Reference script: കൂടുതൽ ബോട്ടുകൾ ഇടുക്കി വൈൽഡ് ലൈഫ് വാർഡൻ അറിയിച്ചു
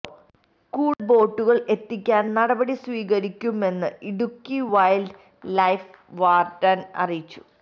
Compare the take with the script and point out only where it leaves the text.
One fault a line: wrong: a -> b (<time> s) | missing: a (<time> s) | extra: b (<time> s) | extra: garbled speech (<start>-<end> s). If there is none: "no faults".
extra: എത്തിക്കാൻ നടപടി സ്വീകരിക്കുമെന്ന് (1.7 s)